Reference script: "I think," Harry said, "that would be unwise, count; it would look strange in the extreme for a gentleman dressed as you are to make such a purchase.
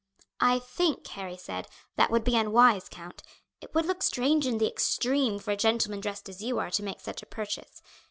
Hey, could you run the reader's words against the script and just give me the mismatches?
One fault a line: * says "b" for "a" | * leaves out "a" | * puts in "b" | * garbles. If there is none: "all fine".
all fine